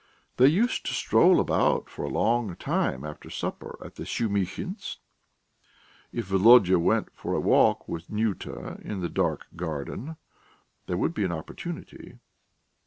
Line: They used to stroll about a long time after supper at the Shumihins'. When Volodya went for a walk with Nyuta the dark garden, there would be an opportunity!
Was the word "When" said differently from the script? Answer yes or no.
yes